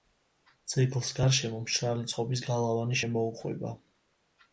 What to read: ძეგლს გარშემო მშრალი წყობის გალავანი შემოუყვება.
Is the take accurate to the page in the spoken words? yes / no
yes